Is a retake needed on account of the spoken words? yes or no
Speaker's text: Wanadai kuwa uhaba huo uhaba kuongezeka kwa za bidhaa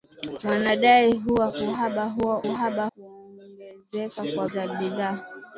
no